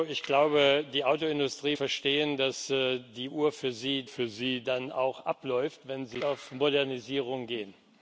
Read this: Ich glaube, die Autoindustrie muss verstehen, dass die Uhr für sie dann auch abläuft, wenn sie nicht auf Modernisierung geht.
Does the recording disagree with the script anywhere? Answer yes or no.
yes